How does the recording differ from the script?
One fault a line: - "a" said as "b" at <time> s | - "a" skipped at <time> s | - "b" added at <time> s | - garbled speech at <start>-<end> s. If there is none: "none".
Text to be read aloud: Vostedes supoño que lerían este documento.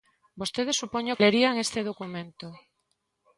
- "que" skipped at 1.2 s